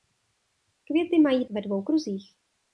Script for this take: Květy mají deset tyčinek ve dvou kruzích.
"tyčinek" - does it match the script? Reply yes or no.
no